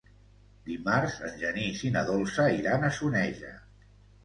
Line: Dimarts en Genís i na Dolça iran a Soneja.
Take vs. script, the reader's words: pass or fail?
pass